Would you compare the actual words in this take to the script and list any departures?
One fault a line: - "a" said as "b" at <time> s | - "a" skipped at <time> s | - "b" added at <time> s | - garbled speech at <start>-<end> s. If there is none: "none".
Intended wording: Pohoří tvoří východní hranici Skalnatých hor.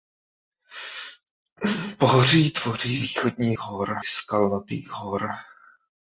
- "hranici" said as "hor" at 3.6 s